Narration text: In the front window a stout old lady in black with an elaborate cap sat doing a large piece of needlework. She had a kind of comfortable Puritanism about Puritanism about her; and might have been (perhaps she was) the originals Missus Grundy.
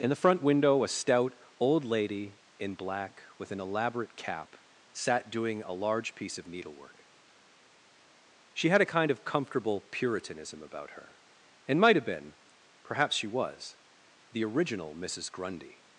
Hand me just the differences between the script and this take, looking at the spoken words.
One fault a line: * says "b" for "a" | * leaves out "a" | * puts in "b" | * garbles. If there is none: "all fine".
* leaves out "Puritanism about"
* says "original" for "originals"